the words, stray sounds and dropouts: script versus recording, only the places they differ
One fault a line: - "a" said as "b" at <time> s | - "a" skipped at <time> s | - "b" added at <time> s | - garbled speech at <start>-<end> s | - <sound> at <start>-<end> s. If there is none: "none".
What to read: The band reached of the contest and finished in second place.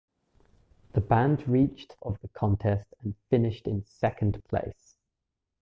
none